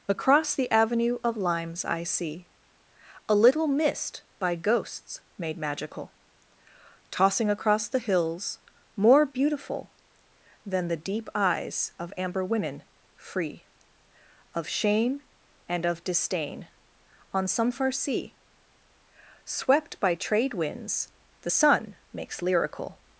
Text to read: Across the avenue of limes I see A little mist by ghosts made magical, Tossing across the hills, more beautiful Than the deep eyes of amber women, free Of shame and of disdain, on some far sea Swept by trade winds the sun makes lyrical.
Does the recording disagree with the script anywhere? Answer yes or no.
no